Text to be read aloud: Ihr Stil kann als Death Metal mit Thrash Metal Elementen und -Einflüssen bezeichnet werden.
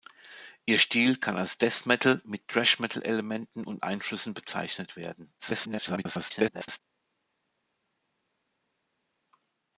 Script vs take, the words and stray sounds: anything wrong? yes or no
yes